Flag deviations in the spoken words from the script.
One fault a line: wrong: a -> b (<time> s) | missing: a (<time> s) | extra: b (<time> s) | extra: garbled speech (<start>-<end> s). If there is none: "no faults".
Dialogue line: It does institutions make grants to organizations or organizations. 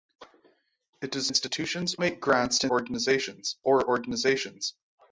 no faults